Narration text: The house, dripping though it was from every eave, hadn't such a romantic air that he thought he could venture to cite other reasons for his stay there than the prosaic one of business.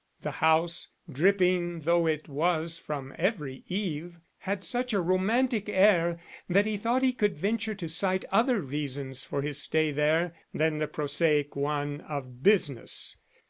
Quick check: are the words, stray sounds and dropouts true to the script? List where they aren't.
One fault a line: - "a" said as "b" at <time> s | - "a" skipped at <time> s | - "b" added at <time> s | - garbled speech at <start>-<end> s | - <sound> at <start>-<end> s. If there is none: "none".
- "hadn't" said as "had" at 4.4 s